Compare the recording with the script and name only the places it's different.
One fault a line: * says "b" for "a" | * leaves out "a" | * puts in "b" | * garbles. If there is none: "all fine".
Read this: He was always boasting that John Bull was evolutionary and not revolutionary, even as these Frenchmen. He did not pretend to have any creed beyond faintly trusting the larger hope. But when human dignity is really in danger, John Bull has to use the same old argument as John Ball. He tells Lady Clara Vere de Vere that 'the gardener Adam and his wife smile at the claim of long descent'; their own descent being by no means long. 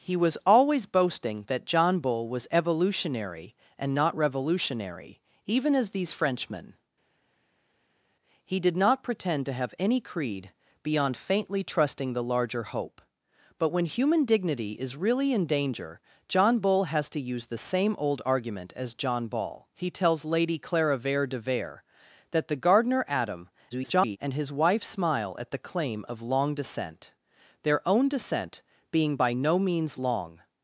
* garbles